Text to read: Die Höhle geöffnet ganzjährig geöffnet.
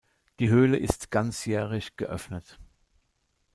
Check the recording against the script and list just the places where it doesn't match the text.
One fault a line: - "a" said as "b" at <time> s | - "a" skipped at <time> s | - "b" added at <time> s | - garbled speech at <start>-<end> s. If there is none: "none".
- "geöffnet" said as "ist" at 0.8 s